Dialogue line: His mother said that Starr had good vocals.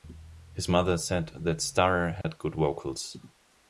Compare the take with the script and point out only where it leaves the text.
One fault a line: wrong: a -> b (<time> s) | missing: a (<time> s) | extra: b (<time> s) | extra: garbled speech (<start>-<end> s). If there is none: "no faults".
no faults